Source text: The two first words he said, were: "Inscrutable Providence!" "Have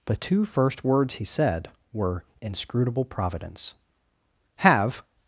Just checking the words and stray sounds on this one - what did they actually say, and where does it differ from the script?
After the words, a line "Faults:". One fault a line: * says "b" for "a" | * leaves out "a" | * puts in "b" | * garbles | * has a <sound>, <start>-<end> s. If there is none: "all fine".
The two first words he said, were: "Inscrutable Providence!" "Have
Faults:
all fine